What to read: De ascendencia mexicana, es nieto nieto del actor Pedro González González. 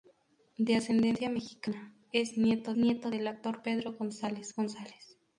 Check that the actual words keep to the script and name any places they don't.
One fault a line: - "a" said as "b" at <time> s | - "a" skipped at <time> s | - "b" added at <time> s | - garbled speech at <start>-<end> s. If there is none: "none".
none